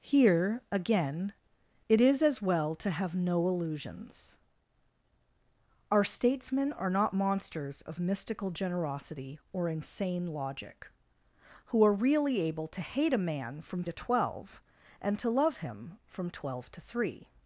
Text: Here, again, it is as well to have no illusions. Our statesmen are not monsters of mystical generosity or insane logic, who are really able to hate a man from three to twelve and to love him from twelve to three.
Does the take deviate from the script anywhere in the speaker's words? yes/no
yes